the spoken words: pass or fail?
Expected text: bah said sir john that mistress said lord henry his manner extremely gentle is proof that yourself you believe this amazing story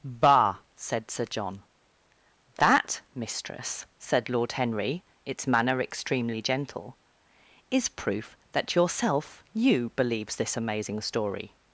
fail